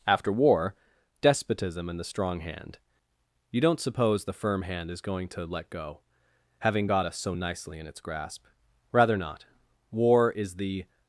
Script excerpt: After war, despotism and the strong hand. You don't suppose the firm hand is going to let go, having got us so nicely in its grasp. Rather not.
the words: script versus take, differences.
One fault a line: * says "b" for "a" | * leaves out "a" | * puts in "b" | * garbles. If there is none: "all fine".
* puts in "War is the"